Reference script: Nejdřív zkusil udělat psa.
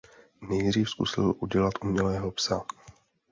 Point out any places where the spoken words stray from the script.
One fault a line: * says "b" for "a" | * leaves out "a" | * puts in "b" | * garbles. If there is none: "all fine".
* puts in "umělého"